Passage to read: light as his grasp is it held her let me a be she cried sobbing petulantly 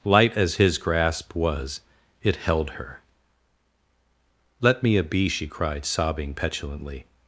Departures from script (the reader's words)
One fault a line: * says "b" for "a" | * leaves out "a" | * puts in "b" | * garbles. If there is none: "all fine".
* says "was" for "is"